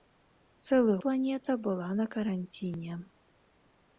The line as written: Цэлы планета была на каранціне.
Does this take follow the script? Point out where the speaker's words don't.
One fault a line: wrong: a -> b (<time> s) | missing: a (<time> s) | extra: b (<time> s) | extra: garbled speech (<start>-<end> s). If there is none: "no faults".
no faults